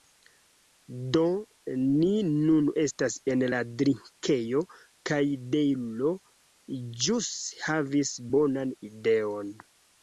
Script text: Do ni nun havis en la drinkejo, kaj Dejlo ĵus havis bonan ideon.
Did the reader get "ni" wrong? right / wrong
right